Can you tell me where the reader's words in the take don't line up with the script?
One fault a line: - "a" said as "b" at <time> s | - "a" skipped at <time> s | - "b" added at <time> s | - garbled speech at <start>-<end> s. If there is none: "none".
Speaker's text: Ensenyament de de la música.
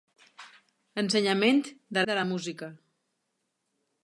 none